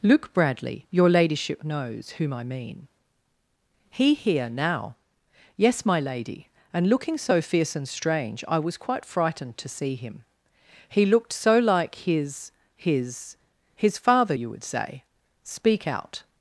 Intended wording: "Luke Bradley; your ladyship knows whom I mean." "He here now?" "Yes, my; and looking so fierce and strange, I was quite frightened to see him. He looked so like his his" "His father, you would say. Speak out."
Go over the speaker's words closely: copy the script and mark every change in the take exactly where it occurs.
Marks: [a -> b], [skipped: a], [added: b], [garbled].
"Luke Bradley; your ladyship knows whom I mean." "He here now?" "Yes, my; [added: lady] and looking so fierce and strange, I was quite frightened to see him. He looked so like his his" "His father, you would say. Speak out."